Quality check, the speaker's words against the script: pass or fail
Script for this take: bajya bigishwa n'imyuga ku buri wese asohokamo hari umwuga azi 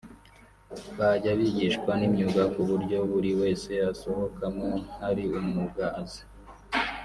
fail